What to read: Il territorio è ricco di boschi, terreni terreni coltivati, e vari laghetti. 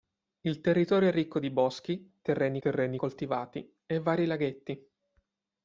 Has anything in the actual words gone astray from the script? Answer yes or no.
no